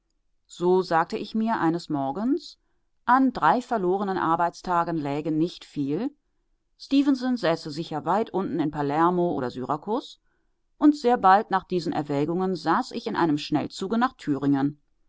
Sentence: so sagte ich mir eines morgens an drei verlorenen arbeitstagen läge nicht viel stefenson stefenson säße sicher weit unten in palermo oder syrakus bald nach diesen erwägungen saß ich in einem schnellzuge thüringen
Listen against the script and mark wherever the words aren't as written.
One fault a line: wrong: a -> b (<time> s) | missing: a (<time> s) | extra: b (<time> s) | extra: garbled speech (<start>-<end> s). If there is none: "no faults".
missing: stefenson (7.4 s)
extra: und sehr (10.8 s)
extra: nach (14.0 s)